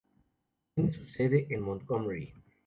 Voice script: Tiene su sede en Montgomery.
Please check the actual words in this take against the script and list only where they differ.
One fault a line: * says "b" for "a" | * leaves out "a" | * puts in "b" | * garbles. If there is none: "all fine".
all fine